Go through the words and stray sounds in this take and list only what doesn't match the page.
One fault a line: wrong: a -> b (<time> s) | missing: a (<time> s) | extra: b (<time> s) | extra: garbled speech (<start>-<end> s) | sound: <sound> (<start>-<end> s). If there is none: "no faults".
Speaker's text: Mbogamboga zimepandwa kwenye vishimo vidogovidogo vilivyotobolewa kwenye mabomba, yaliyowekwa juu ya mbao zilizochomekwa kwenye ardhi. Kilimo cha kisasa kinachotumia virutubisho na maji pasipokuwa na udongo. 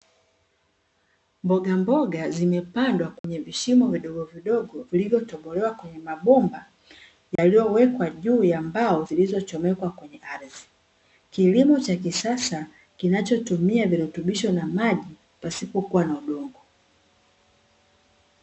sound: dropout (3.2-3.2 s)
sound: dropout (7.4-7.4 s)